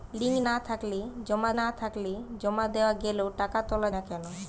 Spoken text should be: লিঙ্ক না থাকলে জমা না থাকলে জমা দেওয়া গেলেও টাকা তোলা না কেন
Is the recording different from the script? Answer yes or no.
no